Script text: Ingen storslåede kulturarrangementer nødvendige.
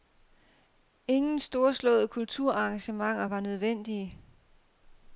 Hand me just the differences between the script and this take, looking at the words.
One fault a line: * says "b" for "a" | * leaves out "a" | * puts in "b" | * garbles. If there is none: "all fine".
* puts in "var"